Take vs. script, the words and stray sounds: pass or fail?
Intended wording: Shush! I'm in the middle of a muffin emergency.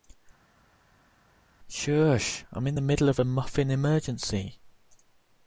pass